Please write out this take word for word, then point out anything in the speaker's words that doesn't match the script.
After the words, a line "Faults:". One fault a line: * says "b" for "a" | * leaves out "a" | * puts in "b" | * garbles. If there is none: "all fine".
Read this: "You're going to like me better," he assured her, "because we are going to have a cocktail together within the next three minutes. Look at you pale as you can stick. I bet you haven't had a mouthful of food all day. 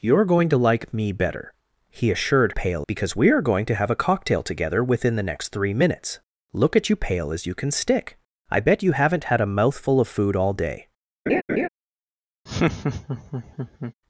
"You're going to like me better," he assured pale, "because we are going to have a cocktail together within the next three minutes. Look at you pale as you can stick. I bet you haven't had a mouthful of food all day.
Faults:
* says "pale" for "her"